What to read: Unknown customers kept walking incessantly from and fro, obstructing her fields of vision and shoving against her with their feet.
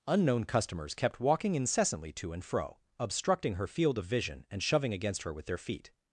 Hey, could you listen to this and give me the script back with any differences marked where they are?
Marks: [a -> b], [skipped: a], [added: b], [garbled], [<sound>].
Unknown customers kept walking incessantly [from -> to] and fro, obstructing her [fields -> field] of vision and shoving against her with their feet.